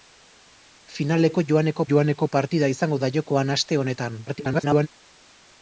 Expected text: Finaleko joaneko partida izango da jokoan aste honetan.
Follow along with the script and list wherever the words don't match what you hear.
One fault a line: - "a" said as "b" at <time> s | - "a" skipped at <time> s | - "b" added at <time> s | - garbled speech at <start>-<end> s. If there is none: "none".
- "joaneko" added at 1.9 s
- garbled speech at 4.3-4.9 s